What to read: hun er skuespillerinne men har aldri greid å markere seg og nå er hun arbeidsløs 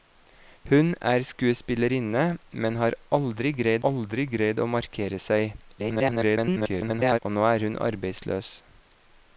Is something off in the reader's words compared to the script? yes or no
yes